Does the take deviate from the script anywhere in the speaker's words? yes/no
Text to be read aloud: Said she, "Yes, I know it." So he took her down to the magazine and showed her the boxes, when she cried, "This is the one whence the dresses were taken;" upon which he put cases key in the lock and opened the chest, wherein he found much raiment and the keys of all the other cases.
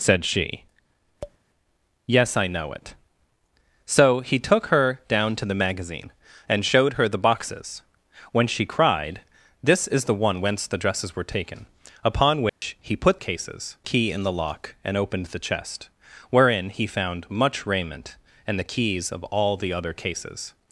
no